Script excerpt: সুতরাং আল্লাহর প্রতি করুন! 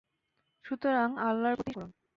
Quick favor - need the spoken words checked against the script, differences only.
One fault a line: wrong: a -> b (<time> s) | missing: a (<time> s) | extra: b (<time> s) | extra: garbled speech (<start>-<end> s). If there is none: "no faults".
no faults